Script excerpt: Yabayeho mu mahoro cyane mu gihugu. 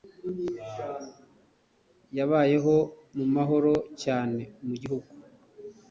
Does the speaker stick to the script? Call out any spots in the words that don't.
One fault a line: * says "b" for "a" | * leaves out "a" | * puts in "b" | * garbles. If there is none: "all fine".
all fine